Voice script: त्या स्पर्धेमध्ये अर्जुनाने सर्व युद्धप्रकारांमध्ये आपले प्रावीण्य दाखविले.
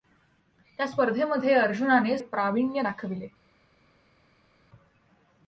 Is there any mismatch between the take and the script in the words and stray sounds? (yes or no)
yes